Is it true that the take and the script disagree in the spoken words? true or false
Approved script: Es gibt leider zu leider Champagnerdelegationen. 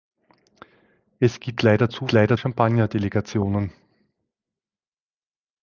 false